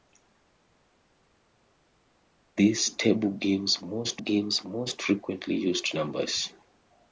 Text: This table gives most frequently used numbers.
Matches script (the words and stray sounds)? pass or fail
fail